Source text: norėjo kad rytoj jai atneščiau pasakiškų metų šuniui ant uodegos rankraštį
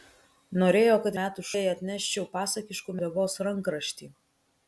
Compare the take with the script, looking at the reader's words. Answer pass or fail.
fail